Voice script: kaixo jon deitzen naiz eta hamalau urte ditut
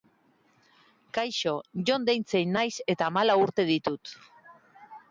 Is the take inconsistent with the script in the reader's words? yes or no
no